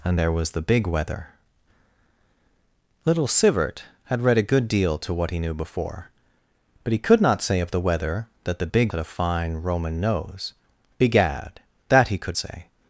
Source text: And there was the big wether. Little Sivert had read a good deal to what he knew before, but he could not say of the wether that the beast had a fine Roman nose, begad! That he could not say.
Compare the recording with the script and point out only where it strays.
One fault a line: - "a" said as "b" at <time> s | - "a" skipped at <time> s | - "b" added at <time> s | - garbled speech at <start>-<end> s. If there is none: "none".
- "beast" said as "big" at 8.7 s
- "not" skipped at 12.4 s